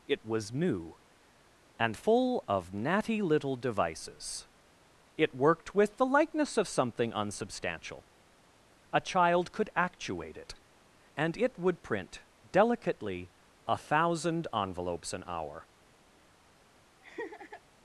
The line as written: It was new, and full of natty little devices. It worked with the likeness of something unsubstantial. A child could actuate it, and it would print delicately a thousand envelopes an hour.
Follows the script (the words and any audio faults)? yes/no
no